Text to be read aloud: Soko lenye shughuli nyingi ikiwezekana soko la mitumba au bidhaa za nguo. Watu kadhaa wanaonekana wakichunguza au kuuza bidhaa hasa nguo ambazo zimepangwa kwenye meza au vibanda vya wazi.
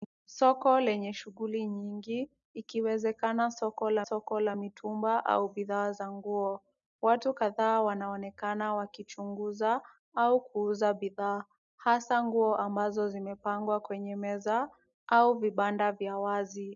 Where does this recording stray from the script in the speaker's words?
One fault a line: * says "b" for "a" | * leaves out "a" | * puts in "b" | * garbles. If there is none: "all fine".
* puts in "soko la"